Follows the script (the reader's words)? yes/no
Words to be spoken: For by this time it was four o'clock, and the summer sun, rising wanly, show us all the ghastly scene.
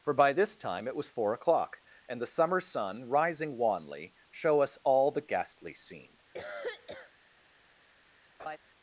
yes